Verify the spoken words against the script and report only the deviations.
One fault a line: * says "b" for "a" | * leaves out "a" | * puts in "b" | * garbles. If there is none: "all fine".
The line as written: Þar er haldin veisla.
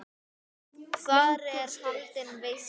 all fine